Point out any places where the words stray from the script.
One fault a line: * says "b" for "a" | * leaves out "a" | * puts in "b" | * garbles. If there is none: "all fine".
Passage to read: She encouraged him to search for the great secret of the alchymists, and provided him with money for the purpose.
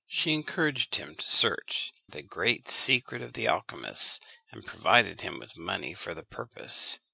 * leaves out "for"